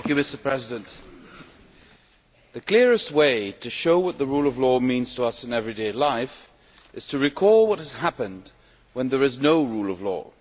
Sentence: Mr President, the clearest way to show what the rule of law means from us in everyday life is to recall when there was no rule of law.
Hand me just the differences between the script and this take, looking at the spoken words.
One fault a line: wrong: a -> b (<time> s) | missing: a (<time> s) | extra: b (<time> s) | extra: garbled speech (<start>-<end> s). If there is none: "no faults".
wrong: from -> to (5.1 s)
extra: what has happened (7.6 s)
wrong: was -> is (9.2 s)